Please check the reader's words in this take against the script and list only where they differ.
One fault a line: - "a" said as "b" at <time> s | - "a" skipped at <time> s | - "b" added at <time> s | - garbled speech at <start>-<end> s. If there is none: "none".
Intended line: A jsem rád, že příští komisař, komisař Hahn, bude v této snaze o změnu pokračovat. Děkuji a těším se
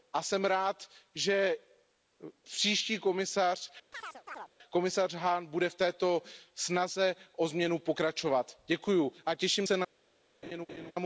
none